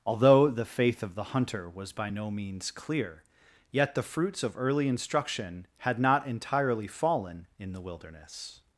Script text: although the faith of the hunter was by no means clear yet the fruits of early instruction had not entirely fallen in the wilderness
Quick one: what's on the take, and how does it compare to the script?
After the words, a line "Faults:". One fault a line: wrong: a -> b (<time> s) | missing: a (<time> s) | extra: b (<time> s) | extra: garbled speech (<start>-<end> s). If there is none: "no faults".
although the faith of the hunter was by no means clear yet the fruits of early instruction had not entirely fallen in the wilderness
Faults:
no faults